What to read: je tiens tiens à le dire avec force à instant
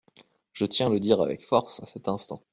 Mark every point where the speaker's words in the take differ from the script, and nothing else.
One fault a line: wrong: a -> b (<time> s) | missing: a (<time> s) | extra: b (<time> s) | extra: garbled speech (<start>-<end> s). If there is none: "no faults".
missing: tiens (0.9 s)
extra: cet (1.9 s)